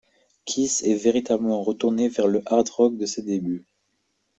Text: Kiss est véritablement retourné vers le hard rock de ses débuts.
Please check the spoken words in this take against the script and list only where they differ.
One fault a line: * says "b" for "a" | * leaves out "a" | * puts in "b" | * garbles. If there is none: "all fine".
all fine